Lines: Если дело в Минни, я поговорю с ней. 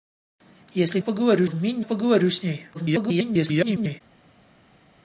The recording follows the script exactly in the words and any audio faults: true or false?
false